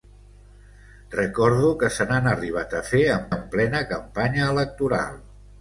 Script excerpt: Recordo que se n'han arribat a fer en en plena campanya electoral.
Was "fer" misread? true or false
false